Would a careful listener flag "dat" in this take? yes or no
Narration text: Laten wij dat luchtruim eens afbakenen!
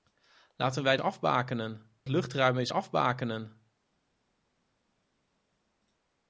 yes